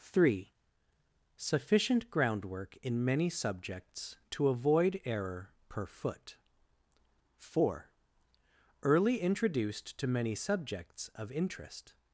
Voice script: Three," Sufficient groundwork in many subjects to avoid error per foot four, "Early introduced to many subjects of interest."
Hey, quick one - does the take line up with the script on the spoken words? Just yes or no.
yes